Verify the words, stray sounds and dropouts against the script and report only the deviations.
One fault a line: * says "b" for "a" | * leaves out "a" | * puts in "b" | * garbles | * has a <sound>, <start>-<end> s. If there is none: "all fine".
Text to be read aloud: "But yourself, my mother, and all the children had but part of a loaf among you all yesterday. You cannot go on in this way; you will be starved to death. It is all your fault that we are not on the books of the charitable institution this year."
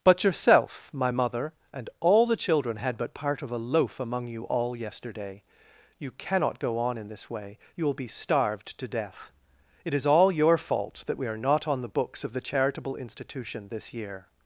all fine